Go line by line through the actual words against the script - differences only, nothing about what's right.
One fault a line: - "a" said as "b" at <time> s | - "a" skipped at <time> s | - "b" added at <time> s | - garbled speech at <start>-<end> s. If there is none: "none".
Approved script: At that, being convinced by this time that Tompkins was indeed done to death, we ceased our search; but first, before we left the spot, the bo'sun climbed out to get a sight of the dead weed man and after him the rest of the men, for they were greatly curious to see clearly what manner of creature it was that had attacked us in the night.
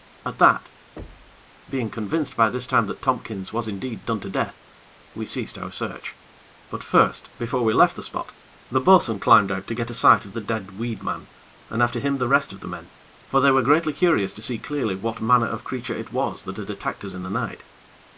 none